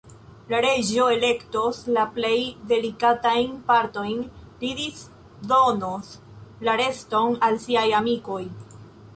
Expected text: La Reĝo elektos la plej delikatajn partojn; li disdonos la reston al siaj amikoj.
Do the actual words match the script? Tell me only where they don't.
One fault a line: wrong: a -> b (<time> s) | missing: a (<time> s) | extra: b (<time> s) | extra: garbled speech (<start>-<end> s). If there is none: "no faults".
no faults